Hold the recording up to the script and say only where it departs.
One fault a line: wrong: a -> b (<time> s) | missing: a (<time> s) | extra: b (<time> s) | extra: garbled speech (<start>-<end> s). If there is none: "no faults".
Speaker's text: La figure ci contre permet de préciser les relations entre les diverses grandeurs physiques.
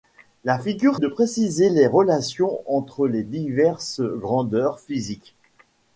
missing: ci contre permet (1.0 s)